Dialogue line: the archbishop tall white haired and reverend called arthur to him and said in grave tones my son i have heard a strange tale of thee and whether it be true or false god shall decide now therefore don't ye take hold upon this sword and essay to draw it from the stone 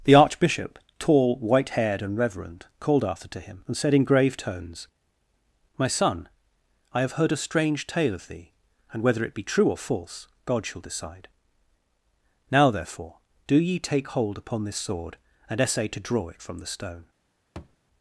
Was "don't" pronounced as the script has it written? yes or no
no